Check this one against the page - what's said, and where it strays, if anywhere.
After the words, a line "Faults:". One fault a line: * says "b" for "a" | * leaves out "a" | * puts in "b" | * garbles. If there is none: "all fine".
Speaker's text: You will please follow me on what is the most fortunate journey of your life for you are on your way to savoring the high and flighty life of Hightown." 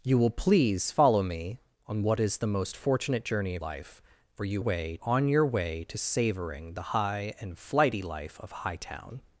You will please follow me on what is the most fortunate journey of life for you way on your way to savoring the high and flighty life of Hightown."
Faults:
* leaves out "your"
* says "way" for "are"